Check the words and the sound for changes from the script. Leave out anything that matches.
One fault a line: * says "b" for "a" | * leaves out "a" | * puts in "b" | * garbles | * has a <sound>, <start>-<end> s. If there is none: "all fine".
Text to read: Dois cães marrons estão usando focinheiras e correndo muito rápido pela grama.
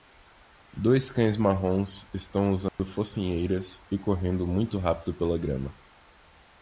* has a dropout, 2.7-2.8 s